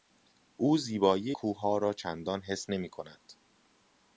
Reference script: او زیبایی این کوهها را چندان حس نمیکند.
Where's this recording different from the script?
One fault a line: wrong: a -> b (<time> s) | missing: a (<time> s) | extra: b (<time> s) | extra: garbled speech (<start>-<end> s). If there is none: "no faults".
missing: این (1.3 s)